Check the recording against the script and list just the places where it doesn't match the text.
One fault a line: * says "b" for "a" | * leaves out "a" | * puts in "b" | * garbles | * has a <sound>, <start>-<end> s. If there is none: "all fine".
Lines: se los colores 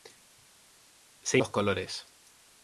all fine